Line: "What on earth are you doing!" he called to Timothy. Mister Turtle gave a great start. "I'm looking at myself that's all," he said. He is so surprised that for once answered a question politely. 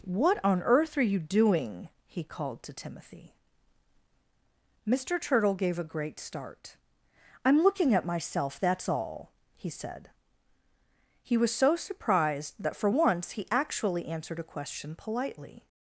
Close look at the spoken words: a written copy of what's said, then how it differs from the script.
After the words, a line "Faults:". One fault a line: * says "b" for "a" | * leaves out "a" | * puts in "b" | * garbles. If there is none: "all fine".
"What on earth are you doing!" he called to Timothy. Mister Turtle gave a great start. "I'm looking at myself that's all," he said. He was so surprised that for once he actually answered a question politely.
Faults:
* says "was" for "is"
* puts in "he actually"